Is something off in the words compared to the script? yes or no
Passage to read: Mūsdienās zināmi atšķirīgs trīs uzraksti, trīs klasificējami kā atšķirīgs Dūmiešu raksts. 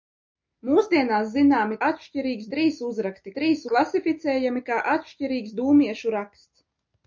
no